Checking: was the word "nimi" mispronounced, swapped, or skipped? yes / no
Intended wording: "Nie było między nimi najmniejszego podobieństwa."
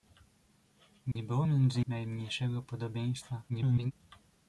yes